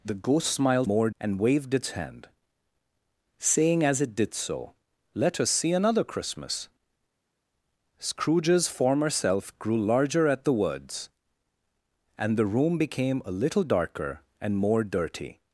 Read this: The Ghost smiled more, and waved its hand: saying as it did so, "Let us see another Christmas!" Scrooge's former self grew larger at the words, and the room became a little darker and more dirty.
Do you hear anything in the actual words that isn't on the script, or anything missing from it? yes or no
no